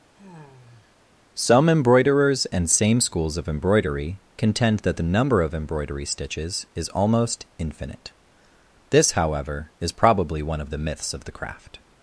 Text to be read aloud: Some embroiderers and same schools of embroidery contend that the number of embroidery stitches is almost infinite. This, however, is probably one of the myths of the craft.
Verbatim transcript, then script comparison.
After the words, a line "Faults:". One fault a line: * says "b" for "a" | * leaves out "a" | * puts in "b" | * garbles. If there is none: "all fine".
Some embroiderers and same schools of embroidery contend that the number of embroidery stitches is almost infinite. This, however, is probably one of the myths of the craft.
Faults:
all fine